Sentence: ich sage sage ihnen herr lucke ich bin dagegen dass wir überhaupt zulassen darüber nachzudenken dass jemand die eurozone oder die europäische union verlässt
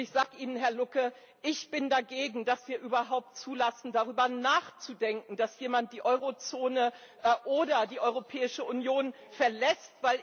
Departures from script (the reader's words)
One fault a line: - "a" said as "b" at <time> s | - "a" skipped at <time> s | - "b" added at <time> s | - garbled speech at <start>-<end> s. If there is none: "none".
- "sage" skipped at 0.4 s